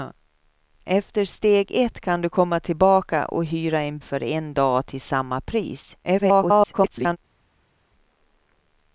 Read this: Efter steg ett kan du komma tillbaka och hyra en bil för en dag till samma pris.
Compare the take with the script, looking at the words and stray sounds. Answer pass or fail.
fail